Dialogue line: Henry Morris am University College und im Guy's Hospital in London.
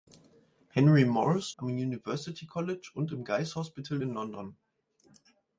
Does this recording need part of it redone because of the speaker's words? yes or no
no